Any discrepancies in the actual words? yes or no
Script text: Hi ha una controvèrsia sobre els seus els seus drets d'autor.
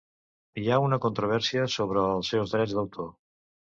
yes